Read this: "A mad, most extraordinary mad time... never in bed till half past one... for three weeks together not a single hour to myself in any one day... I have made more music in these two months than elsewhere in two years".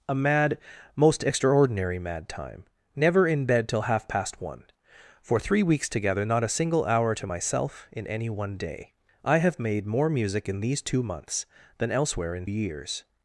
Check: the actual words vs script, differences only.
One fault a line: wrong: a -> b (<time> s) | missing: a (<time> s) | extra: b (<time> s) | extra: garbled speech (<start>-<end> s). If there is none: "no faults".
missing: two (12.5 s)